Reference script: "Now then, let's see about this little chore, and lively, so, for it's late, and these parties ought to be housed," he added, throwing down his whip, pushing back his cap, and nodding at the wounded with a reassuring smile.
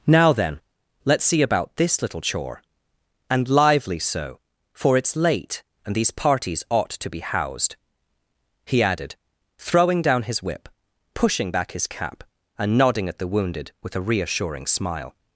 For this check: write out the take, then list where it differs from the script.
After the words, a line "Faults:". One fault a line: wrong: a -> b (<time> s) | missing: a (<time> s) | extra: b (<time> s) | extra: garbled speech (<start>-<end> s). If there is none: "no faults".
"Now then, let's see about this little chore, and lively, so, for it's late, and these parties ought to be housed," he added, throwing down his whip, pushing back his cap, and nodding at the wounded with a reassuring smile.
Faults:
no faults